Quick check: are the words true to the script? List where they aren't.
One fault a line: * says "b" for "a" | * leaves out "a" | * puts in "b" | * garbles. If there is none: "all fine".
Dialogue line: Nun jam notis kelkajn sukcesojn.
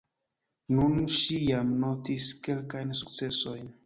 * puts in "ŝi"